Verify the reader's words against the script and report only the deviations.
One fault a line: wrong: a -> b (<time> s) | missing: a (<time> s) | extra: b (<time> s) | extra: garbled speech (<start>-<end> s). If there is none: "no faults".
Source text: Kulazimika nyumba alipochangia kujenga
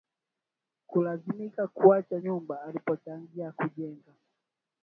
extra: kuacha (1.7 s)